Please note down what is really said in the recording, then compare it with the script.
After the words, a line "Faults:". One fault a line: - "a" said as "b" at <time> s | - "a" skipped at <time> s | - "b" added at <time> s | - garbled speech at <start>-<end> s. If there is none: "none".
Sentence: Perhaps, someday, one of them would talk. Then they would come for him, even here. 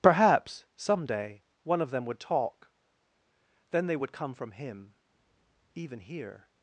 Perhaps, someday, one of them would talk. Then they would come from him, even here.
Faults:
- "for" said as "from" at 4.3 s